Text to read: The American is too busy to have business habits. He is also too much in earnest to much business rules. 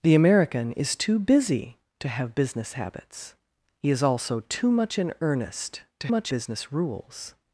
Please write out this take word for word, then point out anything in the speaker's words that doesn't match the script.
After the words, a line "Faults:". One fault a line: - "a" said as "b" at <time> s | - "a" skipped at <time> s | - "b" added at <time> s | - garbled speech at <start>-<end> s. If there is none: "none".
The American is too busy to have business habits. He is also too much in earnest to much business rules.
Faults:
none